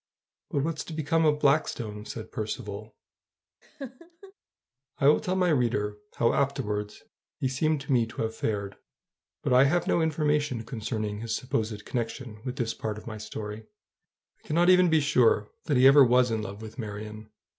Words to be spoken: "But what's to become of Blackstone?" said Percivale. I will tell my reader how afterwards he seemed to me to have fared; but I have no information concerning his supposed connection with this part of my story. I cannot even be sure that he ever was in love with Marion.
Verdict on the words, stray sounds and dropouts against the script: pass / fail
fail